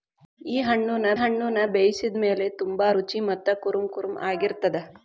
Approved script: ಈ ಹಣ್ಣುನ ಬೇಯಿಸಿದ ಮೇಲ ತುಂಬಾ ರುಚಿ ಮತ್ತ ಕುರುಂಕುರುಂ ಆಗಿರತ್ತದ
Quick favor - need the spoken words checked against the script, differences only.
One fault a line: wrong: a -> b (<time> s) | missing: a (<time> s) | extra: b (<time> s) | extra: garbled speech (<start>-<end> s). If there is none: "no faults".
extra: ಹಣ್ಣುನ (1.1 s)